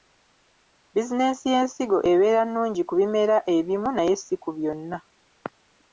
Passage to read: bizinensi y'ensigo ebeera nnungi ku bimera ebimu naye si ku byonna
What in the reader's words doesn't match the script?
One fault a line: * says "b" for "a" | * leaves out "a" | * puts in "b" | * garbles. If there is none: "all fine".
all fine